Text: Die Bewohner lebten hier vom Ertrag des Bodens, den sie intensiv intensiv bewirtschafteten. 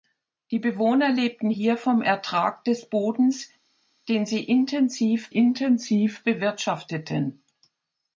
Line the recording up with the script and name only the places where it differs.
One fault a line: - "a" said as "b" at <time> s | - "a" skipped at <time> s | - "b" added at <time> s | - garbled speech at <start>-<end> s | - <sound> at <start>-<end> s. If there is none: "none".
none